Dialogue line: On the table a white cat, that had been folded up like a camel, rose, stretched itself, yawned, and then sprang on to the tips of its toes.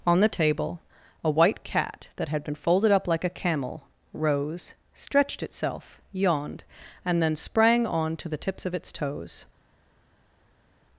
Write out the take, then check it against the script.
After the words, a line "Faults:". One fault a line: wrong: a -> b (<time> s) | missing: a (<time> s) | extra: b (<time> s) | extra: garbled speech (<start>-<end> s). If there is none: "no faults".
On the table a white cat, that had been folded up like a camel, rose, stretched itself, yawned, and then sprang on to the tips of its toes.
Faults:
no faults